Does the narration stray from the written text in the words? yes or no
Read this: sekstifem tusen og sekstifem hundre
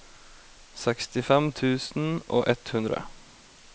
yes